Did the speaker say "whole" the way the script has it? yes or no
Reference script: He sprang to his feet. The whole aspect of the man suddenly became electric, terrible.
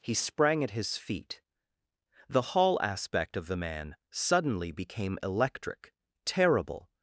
no